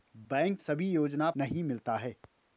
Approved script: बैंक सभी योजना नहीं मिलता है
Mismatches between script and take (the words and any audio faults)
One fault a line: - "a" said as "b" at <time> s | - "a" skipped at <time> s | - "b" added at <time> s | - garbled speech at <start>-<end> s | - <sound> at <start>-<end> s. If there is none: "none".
none